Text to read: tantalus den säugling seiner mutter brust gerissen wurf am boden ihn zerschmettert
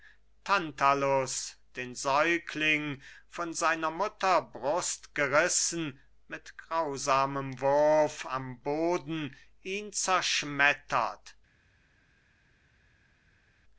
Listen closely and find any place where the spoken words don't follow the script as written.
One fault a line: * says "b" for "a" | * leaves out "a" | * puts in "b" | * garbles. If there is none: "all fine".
* puts in "von"
* puts in "mit grausamem"